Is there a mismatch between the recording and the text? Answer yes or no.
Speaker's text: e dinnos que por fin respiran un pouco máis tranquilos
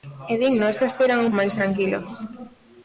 yes